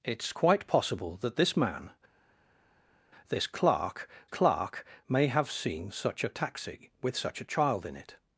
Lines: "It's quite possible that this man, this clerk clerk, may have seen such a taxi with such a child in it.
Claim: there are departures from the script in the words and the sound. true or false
false